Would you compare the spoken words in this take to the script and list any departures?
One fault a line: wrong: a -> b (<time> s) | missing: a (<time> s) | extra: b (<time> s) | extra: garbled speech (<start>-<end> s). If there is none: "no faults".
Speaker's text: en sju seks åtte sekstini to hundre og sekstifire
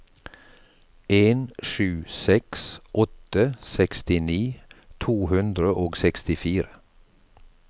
no faults